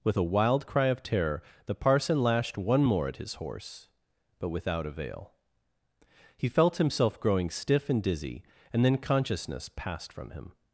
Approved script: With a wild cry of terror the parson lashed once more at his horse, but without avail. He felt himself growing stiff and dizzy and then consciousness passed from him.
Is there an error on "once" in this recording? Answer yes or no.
yes